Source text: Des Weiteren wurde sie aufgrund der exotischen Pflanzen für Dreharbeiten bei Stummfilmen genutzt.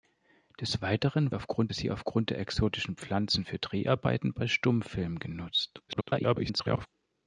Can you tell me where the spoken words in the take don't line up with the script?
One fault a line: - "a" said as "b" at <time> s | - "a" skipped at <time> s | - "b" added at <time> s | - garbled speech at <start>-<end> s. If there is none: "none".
- "wurde" said as "aufgrund" at 1.3 s
- garbled speech at 5.9-6.9 s